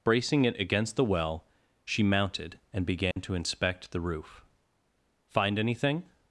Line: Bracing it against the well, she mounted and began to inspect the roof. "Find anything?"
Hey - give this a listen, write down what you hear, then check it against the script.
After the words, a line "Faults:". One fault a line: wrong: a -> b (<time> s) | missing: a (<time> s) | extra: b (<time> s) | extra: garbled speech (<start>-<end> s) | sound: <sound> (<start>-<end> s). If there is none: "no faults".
Bracing it against the well, she mounted and began to inspect the roof. "Find anything?"
Faults:
sound: dropout (3.1-3.2 s)